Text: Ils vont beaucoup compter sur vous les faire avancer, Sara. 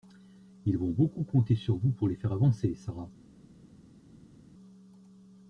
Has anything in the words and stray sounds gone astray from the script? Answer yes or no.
yes